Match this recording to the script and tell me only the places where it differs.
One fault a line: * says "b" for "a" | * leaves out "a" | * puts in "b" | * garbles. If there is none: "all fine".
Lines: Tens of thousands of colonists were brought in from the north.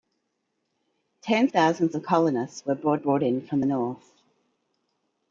* leaves out "of"
* puts in "brought"
* leaves out "the"